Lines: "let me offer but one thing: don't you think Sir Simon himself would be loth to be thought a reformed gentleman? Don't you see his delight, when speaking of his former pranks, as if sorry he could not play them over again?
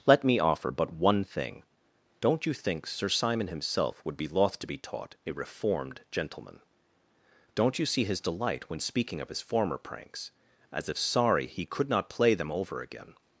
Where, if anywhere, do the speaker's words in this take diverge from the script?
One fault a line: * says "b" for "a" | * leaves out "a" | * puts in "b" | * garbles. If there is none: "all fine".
* says "taught" for "thought"